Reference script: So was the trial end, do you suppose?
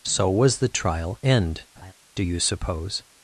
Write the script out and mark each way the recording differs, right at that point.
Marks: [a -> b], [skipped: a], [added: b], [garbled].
So was the trial end, do you suppose?